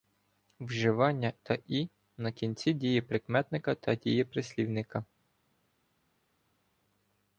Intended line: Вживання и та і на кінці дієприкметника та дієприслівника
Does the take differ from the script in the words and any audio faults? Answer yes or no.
yes